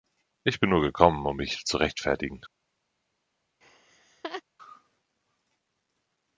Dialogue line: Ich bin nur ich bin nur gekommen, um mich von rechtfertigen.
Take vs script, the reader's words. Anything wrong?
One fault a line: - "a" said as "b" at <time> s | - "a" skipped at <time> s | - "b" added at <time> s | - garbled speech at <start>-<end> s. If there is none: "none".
- "ich bin nur" skipped at 0.8 s
- "von" said as "zu" at 1.6 s